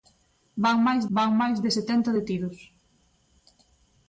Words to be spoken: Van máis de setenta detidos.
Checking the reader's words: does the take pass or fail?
fail